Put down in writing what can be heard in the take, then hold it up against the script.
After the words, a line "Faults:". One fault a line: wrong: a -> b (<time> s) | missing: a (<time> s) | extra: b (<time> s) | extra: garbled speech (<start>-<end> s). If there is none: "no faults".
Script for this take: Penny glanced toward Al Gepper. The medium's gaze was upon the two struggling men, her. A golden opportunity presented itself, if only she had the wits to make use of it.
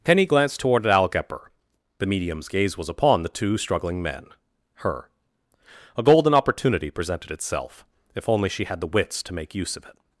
Penny glanced toward Al Gepper. The medium's gaze was upon the two struggling men, her. A golden opportunity presented itself, if only she had the wits to make use of it.
Faults:
no faults